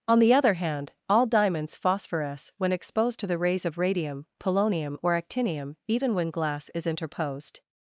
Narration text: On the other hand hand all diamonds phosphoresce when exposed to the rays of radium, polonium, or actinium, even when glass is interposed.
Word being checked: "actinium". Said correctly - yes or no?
yes